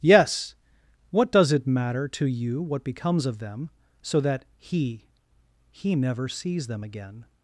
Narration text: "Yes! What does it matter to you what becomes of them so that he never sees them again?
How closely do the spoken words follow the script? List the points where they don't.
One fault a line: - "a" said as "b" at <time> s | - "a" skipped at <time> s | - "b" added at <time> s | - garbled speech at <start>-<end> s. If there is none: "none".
- "he" added at 5.7 s